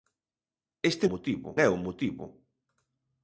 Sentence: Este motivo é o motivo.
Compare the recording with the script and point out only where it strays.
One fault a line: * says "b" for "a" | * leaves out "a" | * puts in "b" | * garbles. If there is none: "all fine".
all fine